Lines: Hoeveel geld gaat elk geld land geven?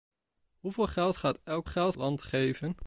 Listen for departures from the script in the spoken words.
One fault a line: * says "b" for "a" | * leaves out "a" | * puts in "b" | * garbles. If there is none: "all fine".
all fine